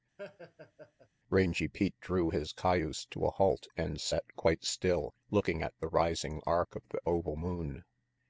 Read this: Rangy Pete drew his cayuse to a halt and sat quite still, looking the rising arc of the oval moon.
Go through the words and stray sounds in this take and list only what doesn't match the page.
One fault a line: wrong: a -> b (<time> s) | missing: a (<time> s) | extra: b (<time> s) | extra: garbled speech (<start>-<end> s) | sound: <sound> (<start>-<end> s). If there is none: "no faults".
sound: laugh (0.2-1.1 s)
extra: at (5.6 s)